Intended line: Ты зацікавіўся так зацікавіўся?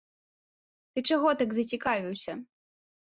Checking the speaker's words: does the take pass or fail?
fail